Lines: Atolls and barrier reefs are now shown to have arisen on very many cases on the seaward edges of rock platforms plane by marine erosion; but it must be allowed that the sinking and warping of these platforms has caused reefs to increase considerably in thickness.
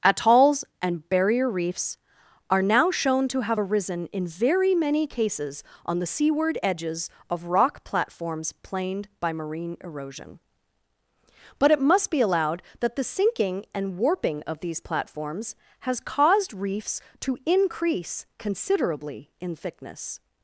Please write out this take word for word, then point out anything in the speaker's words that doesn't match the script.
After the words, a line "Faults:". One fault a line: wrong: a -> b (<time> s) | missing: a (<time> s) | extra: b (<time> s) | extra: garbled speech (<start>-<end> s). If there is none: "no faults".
Atolls and barrier reefs are now shown to have arisen in very many cases on the seaward edges of rock platforms planed by marine erosion; but it must be allowed that the sinking and warping of these platforms has caused reefs to increase considerably in thickness.
Faults:
wrong: on -> in (4.1 s)
wrong: plane -> planed (8.6 s)